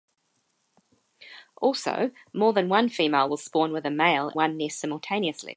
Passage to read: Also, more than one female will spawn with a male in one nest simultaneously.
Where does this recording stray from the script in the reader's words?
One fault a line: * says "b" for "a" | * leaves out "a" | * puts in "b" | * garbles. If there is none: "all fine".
* leaves out "in"